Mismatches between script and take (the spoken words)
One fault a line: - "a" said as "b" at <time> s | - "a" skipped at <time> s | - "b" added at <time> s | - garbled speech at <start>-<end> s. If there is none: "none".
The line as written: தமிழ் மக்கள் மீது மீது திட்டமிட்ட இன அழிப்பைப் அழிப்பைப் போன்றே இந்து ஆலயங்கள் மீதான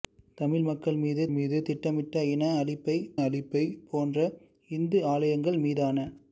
none